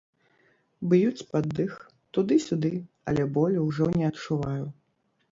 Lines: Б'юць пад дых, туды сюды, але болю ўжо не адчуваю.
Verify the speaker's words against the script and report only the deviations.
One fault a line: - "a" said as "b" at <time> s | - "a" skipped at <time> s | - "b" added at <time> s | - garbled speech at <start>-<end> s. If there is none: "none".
none